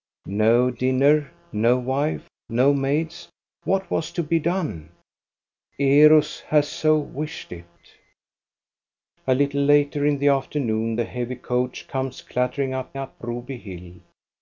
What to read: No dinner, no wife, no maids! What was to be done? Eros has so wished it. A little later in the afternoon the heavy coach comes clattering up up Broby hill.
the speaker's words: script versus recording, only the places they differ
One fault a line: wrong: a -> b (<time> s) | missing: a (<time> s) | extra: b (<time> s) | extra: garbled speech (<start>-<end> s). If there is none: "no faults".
no faults